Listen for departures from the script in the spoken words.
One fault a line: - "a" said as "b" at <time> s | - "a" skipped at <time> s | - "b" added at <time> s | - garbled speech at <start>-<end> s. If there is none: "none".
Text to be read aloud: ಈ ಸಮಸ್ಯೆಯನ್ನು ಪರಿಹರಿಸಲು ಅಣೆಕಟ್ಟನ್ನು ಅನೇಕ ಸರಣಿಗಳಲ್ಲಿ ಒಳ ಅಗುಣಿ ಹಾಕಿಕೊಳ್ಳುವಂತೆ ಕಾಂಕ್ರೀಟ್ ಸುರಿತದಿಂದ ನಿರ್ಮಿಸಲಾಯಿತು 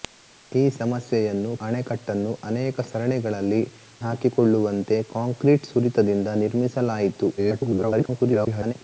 - "ಪರಿಹರಿಸಲು" skipped at 1.5 s
- "ಒಳ ಅಗುಣಿ" skipped at 3.6 s
- garbled speech at 7.4-8.7 s